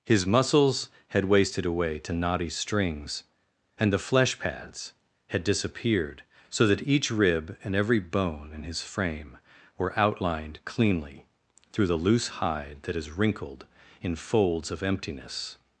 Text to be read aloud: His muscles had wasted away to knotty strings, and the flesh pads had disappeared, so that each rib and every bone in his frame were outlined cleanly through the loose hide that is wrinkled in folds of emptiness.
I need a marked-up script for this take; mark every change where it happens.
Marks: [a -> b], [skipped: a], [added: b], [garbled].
His muscles had wasted away to knotty strings, and the flesh pads had disappeared, so that each rib and every bone in his frame were outlined cleanly through the loose hide that is wrinkled in folds of emptiness.